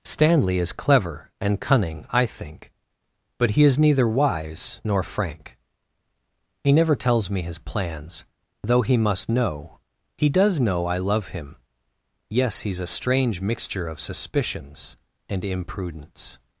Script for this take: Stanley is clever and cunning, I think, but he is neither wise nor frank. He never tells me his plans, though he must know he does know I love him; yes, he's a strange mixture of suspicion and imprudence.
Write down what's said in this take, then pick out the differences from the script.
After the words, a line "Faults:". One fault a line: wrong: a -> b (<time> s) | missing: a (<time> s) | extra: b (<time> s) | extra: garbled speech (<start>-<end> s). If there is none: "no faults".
Stanley is clever and cunning, I think, but he is neither wise nor frank. He never tells me his plans, though he must know he does know I love him; yes, he's a strange mixture of suspicions and imprudence.
Faults:
wrong: suspicion -> suspicions (14.0 s)